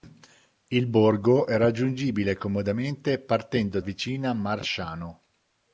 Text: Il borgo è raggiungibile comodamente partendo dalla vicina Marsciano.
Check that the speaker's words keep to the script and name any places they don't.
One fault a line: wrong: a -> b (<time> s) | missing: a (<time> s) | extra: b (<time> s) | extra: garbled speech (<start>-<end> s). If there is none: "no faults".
missing: dalla (3.8 s)